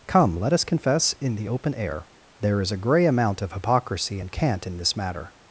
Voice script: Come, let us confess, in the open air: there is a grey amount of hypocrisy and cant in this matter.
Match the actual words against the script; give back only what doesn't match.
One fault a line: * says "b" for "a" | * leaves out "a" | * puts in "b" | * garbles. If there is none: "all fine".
all fine